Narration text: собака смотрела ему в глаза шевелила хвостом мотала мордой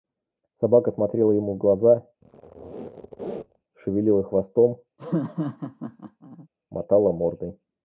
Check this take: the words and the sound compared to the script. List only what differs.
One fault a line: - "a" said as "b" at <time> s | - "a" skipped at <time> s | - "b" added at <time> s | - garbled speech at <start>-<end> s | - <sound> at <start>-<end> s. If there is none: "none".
- squeak at 2.2-3.6 s
- laugh at 5.0-6.5 s